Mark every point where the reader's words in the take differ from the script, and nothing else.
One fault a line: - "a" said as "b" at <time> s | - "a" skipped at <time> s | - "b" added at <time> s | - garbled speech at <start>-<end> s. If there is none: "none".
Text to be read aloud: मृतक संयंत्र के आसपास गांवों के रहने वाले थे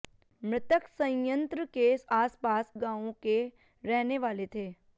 none